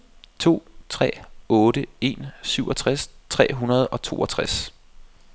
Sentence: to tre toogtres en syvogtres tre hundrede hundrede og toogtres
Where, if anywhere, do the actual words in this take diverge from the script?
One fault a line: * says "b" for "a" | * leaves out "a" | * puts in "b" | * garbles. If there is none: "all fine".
* says "otte" for "toogtres"
* leaves out "hundrede"